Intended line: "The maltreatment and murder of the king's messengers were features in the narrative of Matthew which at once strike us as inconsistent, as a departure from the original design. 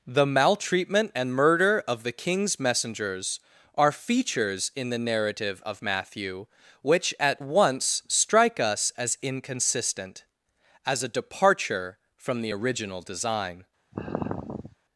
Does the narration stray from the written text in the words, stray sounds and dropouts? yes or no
yes